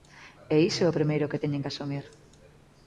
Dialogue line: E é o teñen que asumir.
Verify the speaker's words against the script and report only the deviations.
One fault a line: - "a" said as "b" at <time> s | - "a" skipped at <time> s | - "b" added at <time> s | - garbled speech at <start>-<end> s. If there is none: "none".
- "iso" added at 0.7 s
- "primeiro que" added at 1.0 s